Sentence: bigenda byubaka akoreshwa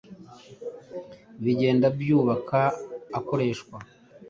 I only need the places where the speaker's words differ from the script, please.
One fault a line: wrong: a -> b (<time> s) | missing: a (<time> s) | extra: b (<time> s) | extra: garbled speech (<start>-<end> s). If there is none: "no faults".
no faults